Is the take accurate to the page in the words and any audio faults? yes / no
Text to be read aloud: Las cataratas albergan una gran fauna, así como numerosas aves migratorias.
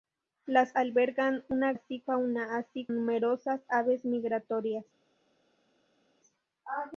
no